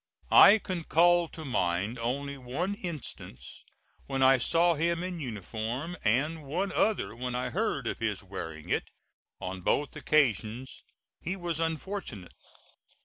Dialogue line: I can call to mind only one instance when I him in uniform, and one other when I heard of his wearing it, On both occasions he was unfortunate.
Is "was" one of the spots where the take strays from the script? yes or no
no